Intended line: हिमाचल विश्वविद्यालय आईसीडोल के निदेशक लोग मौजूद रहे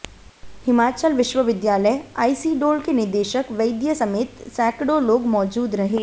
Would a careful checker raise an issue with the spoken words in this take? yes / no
yes